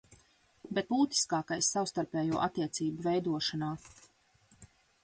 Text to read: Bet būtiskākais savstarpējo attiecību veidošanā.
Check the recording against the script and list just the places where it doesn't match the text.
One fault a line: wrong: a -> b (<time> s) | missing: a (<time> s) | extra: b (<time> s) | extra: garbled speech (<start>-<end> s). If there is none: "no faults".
no faults